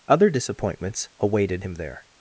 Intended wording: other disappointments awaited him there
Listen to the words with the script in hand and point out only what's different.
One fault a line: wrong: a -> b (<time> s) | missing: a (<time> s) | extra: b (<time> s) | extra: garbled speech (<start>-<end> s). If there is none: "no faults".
no faults